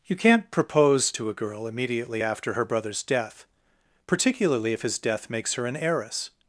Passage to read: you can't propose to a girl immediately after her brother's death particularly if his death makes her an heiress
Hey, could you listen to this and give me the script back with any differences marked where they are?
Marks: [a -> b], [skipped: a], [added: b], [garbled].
you can't propose to a girl immediately after her brother's death particularly if his death makes her an heiress